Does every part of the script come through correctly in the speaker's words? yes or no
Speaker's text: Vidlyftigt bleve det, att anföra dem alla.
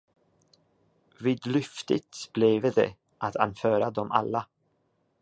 yes